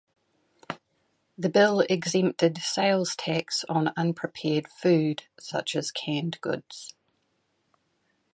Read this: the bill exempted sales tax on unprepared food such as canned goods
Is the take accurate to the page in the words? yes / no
yes